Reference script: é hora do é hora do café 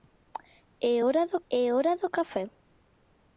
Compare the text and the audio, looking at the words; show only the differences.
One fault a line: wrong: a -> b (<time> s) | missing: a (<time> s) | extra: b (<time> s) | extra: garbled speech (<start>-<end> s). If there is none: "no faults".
no faults